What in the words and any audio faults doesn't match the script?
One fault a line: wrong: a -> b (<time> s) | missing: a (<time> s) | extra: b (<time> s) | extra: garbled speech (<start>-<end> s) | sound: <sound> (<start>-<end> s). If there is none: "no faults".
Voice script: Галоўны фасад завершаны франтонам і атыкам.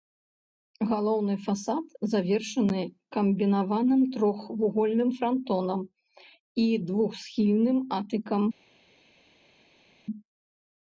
extra: камбінаваным трохвугольным (3.2 s)
extra: двухсхільным (6.9 s)